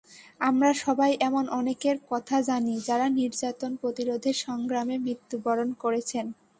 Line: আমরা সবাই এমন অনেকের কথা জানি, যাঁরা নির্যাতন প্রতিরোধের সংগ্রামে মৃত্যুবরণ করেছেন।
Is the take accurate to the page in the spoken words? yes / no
yes